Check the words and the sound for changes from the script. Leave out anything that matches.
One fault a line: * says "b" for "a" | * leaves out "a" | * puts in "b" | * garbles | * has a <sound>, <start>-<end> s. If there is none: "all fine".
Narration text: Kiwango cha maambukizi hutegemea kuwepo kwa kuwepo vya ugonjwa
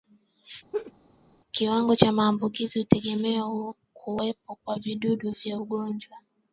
* has a laugh, 0.7-0.9 s
* says "vijidudu" for "kuwepo"